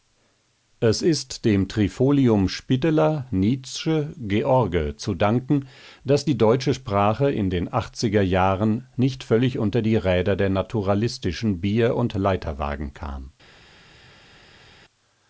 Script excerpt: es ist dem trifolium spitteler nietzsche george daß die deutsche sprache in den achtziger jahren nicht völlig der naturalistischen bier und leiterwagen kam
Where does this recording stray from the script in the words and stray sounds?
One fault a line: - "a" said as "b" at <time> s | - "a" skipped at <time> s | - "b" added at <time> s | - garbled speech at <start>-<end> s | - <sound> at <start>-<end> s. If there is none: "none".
- "zu danken" added at 5.0 s
- "unter die räder" added at 9.6 s